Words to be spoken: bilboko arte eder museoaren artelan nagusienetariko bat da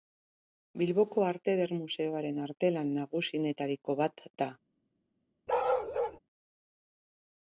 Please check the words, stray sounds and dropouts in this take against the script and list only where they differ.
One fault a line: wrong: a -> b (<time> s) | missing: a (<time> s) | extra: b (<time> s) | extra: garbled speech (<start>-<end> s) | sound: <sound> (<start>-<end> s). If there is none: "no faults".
sound: bark (5.5-6.2 s)